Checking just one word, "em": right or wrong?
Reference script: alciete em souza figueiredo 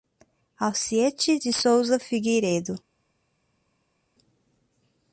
wrong